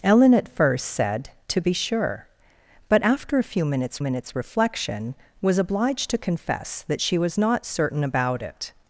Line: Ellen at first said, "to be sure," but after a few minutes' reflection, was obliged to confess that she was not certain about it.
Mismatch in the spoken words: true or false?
true